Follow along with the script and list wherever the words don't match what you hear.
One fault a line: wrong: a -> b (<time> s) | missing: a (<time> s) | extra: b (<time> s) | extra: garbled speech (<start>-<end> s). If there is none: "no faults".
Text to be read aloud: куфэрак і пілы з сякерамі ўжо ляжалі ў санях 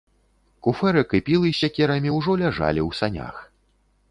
no faults